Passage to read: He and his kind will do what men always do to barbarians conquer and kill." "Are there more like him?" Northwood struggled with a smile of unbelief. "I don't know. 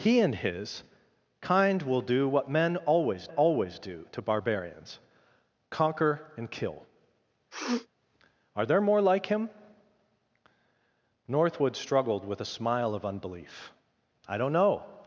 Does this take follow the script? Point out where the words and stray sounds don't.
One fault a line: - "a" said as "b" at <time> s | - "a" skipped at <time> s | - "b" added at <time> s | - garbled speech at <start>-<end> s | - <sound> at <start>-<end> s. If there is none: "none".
- "always" added at 3.3 s
- sniff at 7.5-7.9 s